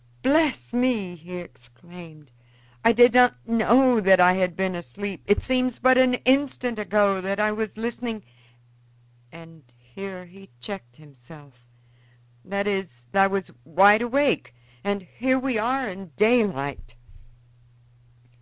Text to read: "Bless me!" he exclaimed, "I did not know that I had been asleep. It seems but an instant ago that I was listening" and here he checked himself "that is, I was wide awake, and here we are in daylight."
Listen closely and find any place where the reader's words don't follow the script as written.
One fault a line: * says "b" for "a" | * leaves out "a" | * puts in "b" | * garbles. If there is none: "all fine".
all fine